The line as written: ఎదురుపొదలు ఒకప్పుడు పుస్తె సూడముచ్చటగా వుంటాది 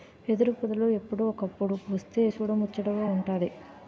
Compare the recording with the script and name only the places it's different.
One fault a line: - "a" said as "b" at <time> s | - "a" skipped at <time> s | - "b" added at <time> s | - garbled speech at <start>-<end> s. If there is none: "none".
- "ఎప్పుడో" added at 0.9 s